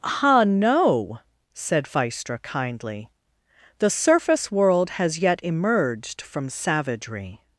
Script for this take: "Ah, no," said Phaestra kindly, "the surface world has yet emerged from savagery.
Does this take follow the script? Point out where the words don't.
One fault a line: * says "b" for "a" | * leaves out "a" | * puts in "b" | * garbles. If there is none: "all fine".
all fine